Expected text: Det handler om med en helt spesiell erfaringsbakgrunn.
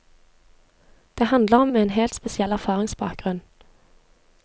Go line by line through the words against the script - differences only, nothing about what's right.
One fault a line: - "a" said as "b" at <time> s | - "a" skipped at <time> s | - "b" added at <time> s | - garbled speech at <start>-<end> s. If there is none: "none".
none